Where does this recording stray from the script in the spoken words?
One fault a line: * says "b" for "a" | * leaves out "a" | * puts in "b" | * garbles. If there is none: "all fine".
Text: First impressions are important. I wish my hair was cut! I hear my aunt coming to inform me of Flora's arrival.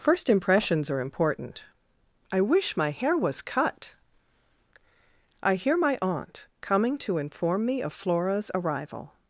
all fine